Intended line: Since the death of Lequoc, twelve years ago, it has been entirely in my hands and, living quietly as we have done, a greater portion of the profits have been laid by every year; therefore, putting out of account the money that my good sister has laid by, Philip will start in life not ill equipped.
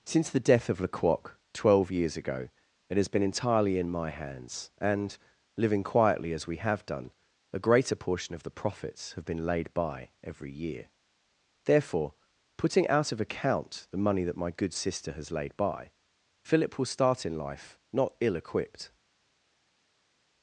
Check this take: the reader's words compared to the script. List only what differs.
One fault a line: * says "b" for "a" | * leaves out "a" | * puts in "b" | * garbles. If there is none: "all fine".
all fine